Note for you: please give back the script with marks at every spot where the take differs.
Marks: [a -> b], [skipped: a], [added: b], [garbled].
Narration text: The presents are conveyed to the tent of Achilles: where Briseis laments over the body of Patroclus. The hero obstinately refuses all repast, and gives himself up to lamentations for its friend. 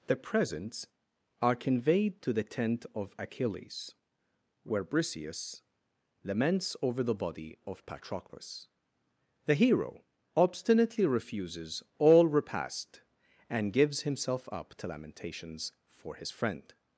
The presents are conveyed to the tent of Achilles: where Briseis laments over the body of Patroclus. The hero obstinately refuses all repast, and gives himself up to lamentations for [its -> his] friend.